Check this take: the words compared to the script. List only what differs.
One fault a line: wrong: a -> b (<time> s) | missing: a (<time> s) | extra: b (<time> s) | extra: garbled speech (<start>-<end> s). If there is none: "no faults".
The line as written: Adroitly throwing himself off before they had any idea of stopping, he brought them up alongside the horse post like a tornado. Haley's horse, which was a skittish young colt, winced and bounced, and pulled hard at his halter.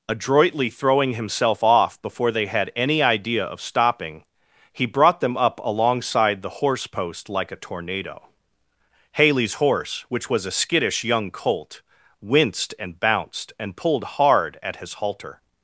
no faults